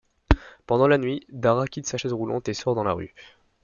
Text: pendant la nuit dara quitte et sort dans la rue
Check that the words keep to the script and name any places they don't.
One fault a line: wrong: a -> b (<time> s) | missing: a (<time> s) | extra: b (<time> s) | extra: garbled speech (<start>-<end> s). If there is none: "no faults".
extra: sa chaise roulante (1.9 s)